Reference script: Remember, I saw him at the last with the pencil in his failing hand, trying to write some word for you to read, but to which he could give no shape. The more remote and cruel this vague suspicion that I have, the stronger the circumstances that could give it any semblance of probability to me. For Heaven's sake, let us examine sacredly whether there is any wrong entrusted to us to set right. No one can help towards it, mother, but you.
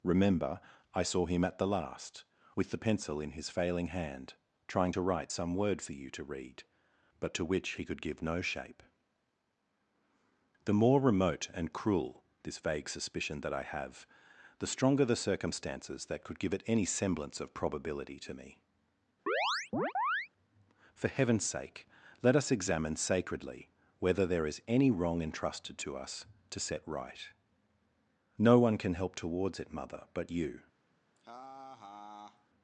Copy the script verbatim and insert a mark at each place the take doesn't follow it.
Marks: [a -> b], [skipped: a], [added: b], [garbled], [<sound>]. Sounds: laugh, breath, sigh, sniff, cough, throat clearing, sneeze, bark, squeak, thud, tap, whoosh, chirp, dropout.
Remember, I saw him at the last with the pencil in his failing hand, trying to write some word for you to read, but to which he could give no shape. The more remote and cruel this vague suspicion that I have, the stronger the circumstances that could give it any semblance of probability to me. [chirp] For Heaven's sake, let us examine sacredly whether there is any wrong entrusted to us to set right. No one can help towards it, mother, but you. [laugh]